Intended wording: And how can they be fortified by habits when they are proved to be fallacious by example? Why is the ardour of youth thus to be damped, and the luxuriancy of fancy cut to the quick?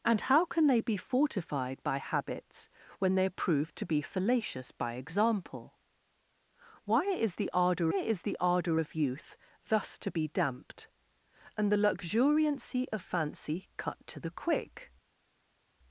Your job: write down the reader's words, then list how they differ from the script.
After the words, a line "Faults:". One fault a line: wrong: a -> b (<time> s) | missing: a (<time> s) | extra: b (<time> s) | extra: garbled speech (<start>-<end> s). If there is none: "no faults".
And how can they be fortified by habits when they are proved to be fallacious by example? Why is the ardour is the ardour of youth thus to be damped, and the luxuriancy of fancy cut to the quick?
Faults:
extra: is the ardour (7.9 s)